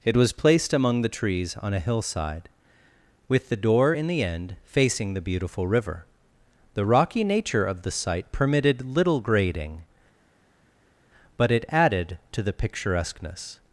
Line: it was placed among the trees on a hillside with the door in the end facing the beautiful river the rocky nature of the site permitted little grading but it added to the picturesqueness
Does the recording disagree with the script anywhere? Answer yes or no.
no